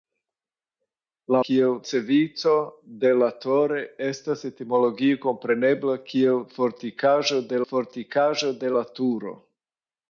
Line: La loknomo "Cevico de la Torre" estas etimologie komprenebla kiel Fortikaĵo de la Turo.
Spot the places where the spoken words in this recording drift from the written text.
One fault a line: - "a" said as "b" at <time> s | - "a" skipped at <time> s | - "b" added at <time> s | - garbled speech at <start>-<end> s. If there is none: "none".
- "loknomo" said as "kiel" at 1.5 s
- "Fortikaĵo de" added at 7.7 s